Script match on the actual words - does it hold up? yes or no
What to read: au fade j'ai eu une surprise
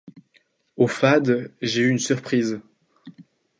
yes